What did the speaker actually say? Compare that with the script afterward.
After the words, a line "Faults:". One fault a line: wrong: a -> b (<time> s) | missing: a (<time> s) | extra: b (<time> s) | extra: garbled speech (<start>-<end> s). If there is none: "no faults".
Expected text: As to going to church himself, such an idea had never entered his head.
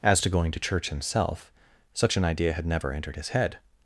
As to going to church himself, such an idea had never entered his head.
Faults:
no faults